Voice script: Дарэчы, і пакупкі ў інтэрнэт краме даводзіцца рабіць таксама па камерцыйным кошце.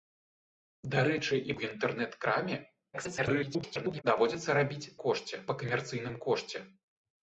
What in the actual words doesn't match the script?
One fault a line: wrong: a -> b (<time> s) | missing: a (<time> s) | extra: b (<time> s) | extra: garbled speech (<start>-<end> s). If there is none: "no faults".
missing: пакупкі (1.6 s)
extra: garbled speech (2.9-4.0 s)
wrong: таксама -> кошце (5.0 s)